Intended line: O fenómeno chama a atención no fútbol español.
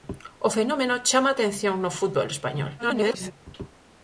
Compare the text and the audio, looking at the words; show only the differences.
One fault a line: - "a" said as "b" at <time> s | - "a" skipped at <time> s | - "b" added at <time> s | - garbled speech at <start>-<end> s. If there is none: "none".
- garbled speech at 2.8-3.3 s